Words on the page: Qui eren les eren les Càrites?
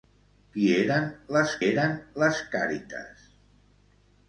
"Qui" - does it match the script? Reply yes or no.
yes